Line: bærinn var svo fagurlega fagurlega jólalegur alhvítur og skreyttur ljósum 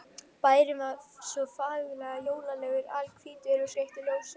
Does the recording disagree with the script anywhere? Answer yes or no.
yes